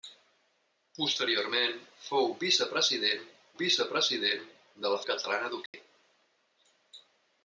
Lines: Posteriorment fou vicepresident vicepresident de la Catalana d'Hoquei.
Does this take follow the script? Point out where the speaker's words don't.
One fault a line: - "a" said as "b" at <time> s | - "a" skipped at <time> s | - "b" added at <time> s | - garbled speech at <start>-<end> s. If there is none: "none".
none